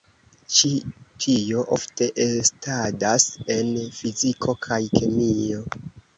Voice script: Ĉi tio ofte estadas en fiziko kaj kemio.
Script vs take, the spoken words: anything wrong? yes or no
no